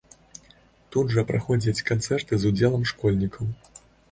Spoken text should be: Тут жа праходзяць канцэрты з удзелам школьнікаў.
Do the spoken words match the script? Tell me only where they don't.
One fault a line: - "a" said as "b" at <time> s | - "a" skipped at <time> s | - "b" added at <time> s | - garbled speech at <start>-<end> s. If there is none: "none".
none